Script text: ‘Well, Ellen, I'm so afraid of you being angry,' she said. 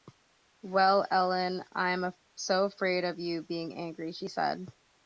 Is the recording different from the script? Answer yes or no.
no